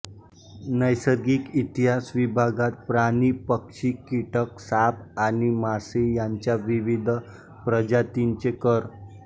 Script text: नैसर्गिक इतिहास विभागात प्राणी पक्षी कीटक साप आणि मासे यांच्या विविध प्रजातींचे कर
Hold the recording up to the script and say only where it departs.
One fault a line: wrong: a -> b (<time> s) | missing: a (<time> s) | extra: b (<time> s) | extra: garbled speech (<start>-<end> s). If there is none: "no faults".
no faults